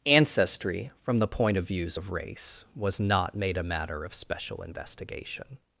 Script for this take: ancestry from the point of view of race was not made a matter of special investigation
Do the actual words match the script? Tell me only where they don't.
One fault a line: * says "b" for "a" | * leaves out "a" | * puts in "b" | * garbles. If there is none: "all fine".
* says "views" for "view"